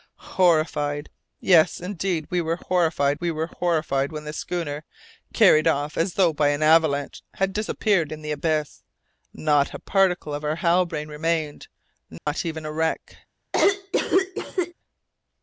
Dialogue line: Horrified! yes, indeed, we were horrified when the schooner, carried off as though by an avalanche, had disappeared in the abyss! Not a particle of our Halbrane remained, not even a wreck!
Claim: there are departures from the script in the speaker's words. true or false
true